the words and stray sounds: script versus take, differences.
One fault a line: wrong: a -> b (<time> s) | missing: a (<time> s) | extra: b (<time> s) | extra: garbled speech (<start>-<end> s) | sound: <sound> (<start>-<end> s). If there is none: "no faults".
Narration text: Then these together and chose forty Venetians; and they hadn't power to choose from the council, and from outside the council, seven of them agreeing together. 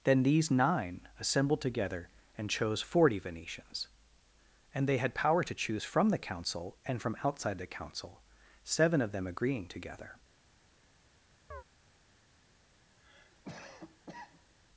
extra: nine assembled (0.5 s)
wrong: hadn't -> had (5.0 s)
sound: chirp (11.5-11.6 s)
sound: cough (13.0-14.5 s)